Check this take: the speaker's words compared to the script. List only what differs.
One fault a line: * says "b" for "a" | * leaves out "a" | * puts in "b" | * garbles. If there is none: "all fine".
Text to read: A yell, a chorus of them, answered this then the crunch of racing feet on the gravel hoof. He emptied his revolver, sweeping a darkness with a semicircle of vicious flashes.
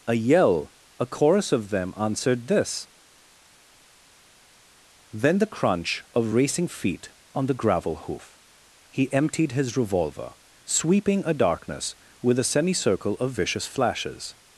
all fine